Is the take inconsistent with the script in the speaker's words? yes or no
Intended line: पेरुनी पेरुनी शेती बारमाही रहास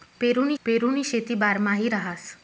no